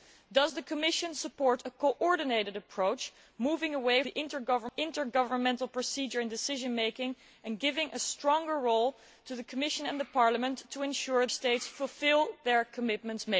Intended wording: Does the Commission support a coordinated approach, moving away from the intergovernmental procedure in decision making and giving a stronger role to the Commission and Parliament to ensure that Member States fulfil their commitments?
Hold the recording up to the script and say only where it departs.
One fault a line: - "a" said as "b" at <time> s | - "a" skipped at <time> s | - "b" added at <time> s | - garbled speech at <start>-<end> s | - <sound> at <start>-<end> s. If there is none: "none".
- "from" skipped at 4.0 s
- "that Member" skipped at 11.3 s